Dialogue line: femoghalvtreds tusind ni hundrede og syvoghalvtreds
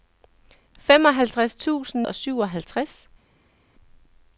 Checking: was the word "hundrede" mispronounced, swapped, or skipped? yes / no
yes